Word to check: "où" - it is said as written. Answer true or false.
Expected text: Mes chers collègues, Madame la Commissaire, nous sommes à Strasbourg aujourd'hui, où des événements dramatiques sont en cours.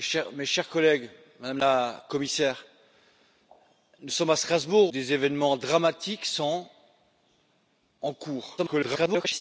false